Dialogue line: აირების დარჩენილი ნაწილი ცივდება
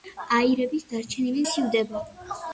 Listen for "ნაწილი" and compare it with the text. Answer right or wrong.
wrong